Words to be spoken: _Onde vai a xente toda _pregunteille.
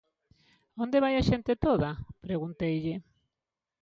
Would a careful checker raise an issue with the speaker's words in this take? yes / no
no